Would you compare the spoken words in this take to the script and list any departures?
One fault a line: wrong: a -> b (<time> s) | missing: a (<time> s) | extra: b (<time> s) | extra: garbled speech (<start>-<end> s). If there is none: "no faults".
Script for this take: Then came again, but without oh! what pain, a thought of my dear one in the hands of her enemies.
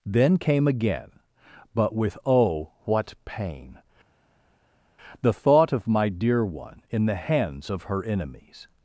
wrong: without -> with (1.9 s)
wrong: a -> the (5.2 s)